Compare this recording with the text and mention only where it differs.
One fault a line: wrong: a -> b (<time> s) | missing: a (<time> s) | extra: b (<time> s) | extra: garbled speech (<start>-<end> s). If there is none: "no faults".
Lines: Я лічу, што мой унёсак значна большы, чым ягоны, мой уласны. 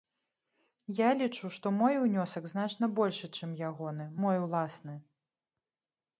no faults